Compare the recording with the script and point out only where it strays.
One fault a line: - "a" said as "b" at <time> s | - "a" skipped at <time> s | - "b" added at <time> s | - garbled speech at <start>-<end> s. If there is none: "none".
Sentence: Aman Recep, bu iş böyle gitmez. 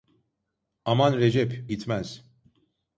- "bu iş böyle" skipped at 1.6 s